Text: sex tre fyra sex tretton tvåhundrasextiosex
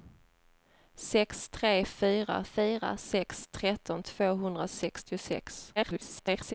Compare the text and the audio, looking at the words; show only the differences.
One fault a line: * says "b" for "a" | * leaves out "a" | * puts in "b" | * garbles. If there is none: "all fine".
* puts in "fyra"
* garbles